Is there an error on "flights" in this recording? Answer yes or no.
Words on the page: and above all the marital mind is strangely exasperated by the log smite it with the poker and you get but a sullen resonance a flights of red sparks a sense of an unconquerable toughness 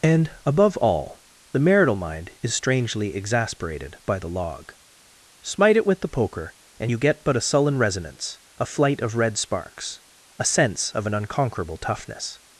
yes